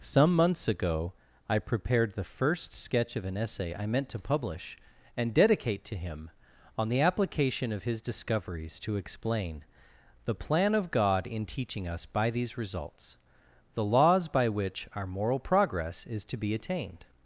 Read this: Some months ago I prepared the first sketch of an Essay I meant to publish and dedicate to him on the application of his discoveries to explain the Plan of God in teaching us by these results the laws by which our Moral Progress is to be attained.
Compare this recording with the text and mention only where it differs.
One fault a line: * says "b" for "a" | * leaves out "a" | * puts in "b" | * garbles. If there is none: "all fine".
all fine